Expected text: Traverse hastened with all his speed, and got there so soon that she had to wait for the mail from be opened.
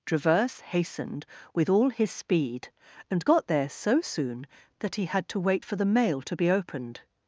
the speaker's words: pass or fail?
fail